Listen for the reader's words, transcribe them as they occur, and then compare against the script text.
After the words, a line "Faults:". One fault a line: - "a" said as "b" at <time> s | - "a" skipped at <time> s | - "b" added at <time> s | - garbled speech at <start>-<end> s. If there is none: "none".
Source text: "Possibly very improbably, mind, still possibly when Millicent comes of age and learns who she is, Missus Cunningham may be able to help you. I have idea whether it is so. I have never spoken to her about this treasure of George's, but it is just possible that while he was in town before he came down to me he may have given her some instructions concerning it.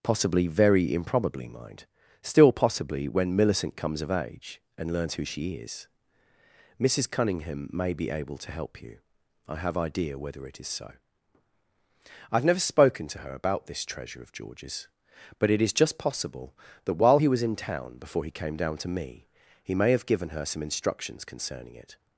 "Possibly very improbably, mind, still possibly when Millicent comes of age and learns who she is, Missus Cunningham may be able to help you. I have idea whether it is so. I have never spoken to her about this treasure of George's, but it is just possible that while he was in town before he came down to me he may have given her some instructions concerning it.
Faults:
none